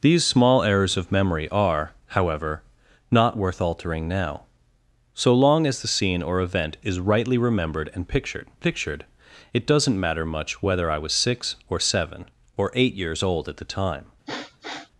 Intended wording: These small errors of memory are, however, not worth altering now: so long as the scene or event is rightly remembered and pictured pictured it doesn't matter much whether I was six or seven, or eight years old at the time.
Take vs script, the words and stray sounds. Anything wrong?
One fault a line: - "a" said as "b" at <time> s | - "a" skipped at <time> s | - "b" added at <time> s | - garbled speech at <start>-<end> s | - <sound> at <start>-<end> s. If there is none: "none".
- sniff at 14.3-14.9 s